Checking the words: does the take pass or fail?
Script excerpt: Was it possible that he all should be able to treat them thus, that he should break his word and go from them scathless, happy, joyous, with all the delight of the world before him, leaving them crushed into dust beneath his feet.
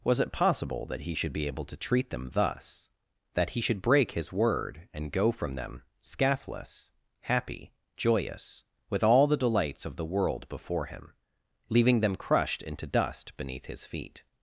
fail